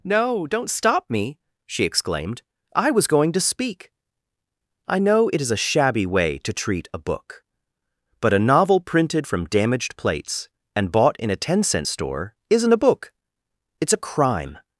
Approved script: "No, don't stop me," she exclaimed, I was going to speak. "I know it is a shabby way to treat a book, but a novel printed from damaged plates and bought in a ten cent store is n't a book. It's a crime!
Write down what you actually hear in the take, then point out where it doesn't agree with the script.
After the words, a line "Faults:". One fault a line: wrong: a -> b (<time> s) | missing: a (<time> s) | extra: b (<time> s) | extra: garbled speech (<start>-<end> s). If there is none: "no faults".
"No, don't stop me," she exclaimed, I was going to speak. "I know it is a shabby way to treat a book, but a novel printed from damaged plates and bought in a ten cent store is n't a book. It's a crime!
Faults:
no faults